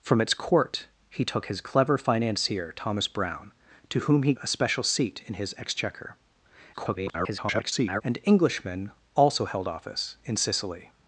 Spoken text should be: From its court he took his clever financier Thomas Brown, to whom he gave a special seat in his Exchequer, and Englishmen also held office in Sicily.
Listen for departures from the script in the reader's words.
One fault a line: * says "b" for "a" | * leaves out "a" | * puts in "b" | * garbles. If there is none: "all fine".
* leaves out "gave"
* garbles